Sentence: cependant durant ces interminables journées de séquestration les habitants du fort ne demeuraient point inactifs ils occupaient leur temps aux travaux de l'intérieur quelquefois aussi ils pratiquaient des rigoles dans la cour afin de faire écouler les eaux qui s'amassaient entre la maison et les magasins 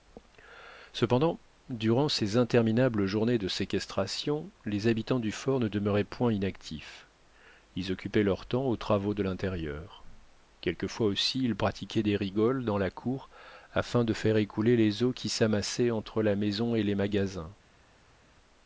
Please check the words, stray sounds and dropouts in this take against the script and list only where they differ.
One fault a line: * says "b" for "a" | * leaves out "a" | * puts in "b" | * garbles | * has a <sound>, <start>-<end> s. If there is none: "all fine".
all fine